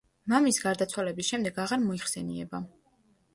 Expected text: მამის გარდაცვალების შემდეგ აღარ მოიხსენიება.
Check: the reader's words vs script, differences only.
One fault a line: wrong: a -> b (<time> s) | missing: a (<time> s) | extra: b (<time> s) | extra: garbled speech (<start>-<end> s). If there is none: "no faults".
no faults